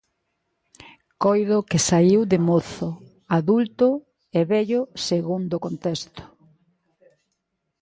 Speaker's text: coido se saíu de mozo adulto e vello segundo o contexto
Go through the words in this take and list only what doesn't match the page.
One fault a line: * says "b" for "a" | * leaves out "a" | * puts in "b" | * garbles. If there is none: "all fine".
* says "que" for "se"